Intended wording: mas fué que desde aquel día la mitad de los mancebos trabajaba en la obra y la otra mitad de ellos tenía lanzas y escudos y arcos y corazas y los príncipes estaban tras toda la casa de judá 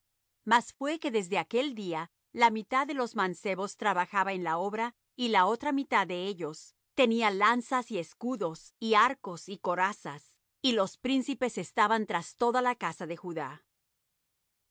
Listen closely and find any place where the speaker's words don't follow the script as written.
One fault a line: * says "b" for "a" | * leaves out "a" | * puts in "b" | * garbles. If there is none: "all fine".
all fine